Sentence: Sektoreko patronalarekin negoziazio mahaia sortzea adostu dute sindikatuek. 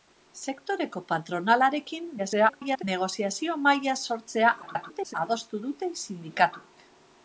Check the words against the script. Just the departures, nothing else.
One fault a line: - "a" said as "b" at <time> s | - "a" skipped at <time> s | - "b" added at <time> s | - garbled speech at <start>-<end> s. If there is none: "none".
- garbled speech at 2.2-2.8 s
- garbled speech at 4.6-5.1 s